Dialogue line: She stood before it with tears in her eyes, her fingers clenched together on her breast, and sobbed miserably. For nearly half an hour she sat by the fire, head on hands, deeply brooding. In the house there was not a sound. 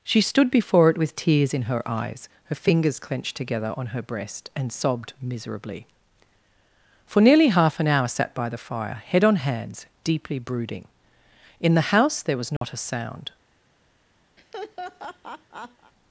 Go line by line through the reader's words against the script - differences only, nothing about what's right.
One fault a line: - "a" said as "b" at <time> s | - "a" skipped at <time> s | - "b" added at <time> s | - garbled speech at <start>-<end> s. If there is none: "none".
- "she" skipped at 8.1 s